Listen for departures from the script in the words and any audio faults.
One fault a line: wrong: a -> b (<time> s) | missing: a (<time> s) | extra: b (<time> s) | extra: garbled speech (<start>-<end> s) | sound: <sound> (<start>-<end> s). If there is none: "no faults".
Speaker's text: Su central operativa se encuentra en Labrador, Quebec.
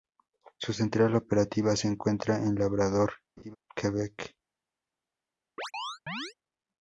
sound: laugh (3.4-3.6 s)
sound: chirp (5.6-6.3 s)